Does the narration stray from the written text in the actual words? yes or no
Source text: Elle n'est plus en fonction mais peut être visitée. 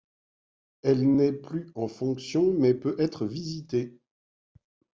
no